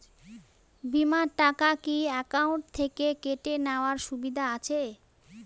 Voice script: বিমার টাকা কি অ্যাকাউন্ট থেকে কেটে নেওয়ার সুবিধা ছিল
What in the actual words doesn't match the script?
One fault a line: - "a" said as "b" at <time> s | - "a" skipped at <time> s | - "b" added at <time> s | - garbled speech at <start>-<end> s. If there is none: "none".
- "ছিল" said as "আছে" at 4.5 s